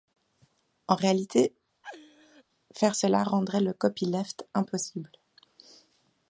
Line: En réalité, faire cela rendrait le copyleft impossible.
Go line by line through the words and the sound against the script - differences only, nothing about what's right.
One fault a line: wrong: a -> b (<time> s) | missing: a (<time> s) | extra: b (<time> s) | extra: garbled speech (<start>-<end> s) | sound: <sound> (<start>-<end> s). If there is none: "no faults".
sound: laugh (1.8-2.4 s)